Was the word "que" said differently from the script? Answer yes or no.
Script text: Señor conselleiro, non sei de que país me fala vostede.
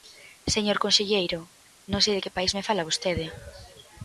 no